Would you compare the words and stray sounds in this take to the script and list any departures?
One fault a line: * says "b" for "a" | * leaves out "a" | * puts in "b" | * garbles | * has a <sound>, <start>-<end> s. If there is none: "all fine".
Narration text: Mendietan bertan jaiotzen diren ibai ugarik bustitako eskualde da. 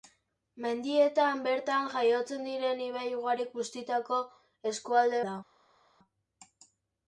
all fine